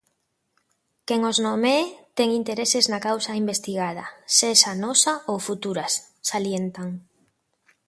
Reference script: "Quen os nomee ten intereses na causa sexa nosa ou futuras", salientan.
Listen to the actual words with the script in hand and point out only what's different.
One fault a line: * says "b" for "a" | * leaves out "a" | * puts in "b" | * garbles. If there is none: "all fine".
* puts in "investigada"